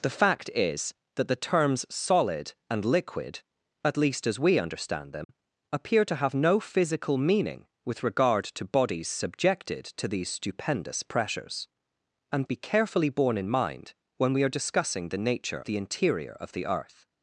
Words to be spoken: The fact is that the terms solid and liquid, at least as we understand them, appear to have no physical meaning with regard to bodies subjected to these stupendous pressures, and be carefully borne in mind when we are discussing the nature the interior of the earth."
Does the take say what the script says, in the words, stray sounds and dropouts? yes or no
no